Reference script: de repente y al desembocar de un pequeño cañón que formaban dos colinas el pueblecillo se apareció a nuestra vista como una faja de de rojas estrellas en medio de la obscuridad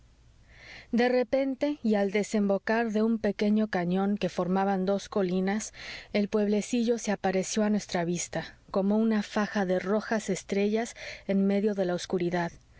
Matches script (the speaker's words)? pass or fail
fail